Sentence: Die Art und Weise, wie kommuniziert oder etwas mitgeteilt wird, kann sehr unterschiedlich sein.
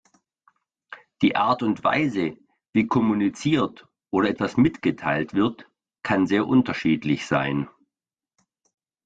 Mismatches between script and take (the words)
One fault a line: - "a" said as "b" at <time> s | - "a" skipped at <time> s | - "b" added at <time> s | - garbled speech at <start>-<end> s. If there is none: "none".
none